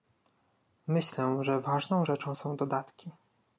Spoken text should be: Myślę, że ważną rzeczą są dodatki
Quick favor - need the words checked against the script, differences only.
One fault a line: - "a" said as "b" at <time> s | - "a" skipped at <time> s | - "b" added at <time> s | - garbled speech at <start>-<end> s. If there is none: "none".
none